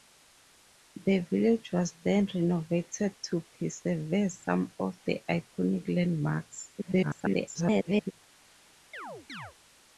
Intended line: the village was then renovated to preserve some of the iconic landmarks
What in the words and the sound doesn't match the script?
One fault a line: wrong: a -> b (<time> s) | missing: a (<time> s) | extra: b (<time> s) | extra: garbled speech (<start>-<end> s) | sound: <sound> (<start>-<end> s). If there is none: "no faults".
extra: garbled speech (6.8-8.1 s)
sound: chirp (8.9-9.5 s)